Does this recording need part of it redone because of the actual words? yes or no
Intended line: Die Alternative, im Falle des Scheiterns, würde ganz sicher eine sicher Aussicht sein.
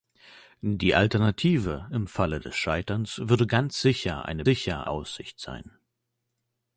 no